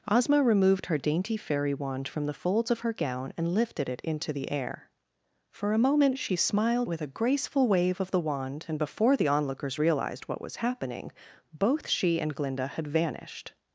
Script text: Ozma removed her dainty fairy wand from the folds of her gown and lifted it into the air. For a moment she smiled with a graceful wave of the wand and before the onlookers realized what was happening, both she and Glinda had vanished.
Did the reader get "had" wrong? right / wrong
right